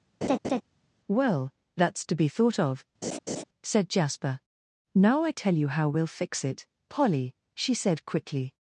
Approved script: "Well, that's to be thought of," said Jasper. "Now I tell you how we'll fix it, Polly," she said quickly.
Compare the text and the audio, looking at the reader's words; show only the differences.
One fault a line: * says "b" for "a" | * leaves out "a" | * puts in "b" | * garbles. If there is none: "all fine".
all fine